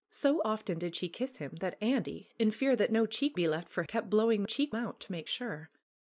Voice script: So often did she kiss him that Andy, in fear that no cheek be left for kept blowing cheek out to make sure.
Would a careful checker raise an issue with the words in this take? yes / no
no